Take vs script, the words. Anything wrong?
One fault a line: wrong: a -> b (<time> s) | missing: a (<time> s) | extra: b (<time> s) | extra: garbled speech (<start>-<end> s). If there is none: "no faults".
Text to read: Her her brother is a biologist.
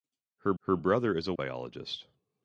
no faults